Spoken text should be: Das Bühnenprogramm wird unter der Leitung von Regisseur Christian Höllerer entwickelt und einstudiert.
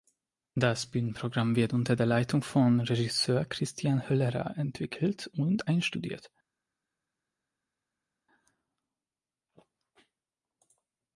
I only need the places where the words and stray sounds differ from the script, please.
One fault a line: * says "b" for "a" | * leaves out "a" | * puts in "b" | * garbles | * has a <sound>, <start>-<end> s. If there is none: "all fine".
all fine